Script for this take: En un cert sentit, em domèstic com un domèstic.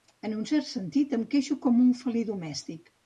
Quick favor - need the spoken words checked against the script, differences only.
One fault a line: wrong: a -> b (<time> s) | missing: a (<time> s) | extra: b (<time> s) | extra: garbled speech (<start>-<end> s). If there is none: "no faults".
wrong: domèstic -> queixo (1.4 s)
extra: felí (2.0 s)